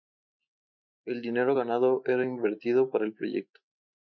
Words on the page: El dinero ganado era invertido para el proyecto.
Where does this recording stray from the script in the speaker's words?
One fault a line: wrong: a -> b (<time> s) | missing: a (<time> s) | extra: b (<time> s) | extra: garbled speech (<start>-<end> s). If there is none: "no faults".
no faults